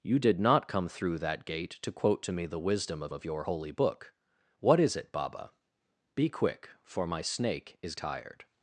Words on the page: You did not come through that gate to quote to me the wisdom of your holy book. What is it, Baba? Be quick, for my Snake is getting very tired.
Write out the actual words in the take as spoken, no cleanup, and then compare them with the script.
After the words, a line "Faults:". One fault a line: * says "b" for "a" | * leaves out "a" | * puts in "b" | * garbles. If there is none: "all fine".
You did not come through that gate to quote to me the wisdom of of your holy book. What is it, Baba? Be quick, for my Snake is tired.
Faults:
* puts in "of"
* leaves out "getting very"